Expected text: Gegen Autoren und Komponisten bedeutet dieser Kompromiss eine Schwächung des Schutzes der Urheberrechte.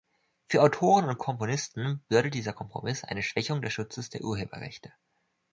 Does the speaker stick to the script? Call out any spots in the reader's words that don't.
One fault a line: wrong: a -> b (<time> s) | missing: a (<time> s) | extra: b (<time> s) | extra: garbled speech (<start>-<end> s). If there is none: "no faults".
wrong: Gegen -> Für (0.5 s)